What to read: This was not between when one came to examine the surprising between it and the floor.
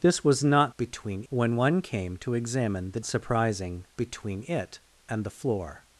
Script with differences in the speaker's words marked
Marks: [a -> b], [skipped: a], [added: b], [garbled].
This was not between when one came to examine the surprising between it and the floor.